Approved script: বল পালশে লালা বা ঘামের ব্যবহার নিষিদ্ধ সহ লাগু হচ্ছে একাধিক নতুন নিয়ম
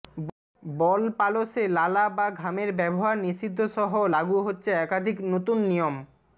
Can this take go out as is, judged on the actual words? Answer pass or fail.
pass